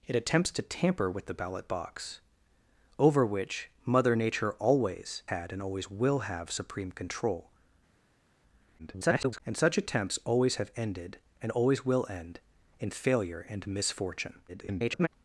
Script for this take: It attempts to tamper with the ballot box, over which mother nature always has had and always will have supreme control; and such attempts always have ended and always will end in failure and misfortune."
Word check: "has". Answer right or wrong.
wrong